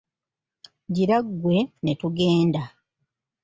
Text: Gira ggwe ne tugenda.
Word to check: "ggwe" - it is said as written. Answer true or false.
true